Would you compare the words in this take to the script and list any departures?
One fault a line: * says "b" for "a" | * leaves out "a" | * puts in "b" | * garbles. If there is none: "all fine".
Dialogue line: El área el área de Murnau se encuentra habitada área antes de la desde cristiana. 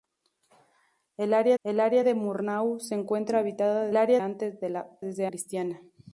all fine